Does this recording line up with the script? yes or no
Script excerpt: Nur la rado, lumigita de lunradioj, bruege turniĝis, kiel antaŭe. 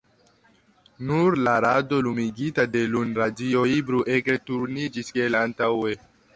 yes